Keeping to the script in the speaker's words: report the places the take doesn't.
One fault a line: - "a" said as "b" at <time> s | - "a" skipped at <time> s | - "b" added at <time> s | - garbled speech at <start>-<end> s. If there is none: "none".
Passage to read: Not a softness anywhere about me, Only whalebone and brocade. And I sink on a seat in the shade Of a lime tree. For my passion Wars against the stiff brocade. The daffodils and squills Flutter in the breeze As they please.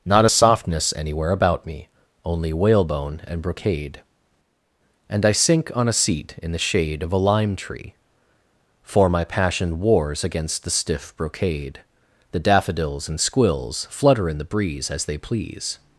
none